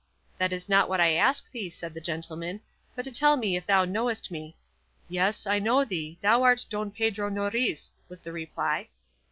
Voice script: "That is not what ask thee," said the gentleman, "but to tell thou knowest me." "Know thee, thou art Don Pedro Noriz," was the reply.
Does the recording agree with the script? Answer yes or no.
no